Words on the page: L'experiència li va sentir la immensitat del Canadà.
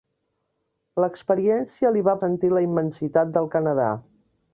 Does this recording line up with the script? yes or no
yes